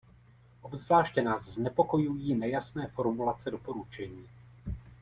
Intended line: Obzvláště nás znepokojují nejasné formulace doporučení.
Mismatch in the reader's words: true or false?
false